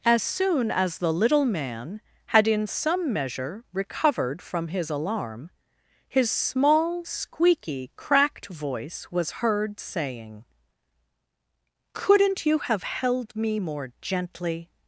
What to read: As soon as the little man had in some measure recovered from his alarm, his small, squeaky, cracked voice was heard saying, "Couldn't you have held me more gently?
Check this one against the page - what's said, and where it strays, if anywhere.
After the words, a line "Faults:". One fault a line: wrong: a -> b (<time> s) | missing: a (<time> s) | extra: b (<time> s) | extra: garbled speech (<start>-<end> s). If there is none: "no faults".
As soon as the little man had in some measure recovered from his alarm, his small, squeaky, cracked voice was heard saying, "Couldn't you have held me more gently?
Faults:
no faults